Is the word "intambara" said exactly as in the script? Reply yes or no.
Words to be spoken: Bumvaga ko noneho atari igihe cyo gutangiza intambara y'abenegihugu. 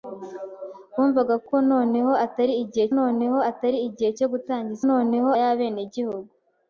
no